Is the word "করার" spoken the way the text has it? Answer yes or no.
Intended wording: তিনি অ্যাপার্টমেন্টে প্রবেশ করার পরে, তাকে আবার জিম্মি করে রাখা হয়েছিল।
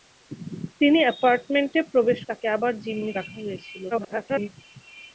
no